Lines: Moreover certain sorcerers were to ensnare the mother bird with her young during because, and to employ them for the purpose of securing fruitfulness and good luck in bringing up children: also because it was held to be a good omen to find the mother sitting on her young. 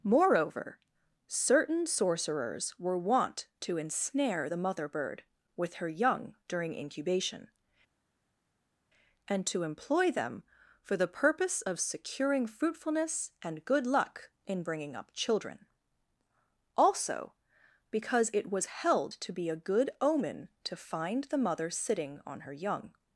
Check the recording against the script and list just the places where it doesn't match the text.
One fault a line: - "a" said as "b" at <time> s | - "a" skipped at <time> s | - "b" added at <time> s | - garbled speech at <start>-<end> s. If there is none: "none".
- "wont" added at 3.0 s
- "because" said as "incubation" at 6.7 s